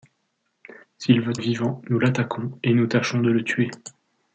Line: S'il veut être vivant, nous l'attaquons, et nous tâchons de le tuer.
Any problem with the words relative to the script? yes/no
yes